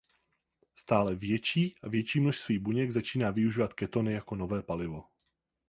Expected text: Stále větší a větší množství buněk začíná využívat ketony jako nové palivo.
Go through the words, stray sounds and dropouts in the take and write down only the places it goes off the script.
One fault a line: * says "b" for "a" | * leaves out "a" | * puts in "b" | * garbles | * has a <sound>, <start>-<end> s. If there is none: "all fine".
all fine